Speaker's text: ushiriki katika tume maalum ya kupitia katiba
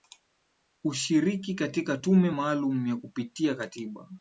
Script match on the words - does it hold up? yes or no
yes